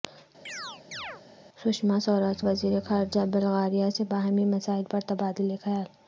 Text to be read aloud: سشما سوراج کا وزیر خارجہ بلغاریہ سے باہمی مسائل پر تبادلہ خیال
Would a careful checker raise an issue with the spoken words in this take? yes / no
yes